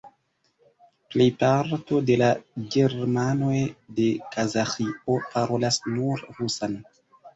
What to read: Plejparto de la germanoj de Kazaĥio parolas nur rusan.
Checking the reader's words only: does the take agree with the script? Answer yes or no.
yes